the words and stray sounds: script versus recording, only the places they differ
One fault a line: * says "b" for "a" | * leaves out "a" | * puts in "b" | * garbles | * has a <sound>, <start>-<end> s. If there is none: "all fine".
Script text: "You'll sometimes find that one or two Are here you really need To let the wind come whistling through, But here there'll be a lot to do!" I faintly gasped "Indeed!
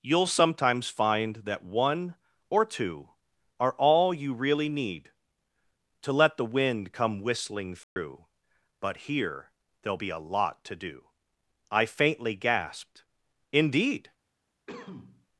* says "all" for "here"
* has a dropout, 7.8-8.0 s
* has a cough, 14.7-15.3 s